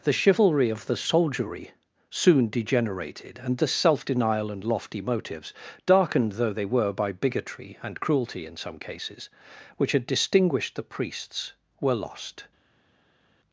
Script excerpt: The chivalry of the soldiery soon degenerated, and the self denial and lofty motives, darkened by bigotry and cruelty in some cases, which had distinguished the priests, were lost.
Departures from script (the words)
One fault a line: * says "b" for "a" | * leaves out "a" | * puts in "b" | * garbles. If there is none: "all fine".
* puts in "though they were"